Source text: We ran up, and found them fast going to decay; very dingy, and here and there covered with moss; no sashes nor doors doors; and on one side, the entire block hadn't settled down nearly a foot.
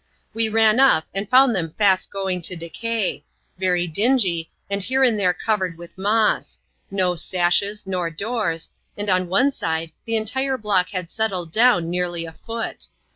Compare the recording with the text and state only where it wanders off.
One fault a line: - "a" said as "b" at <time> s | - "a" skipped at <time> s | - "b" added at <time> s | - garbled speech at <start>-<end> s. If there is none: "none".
- "doors" skipped at 8.7 s
- "hadn't" said as "had" at 10.9 s